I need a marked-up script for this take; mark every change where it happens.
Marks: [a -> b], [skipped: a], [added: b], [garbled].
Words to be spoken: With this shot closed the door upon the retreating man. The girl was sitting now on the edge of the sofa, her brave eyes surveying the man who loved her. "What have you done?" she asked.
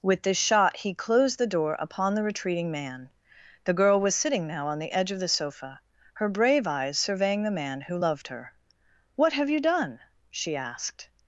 With this shot [added: he] closed the door upon the retreating man. The girl was sitting now on the edge of the sofa, her brave eyes surveying the man who loved her. "What have you done?" she asked.